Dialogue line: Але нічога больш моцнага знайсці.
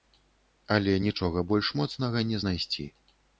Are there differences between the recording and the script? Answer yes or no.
yes